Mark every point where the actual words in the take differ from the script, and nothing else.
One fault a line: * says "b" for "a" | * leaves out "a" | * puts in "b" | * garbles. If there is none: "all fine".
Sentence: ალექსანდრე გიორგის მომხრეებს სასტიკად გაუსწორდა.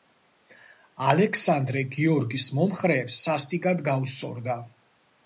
all fine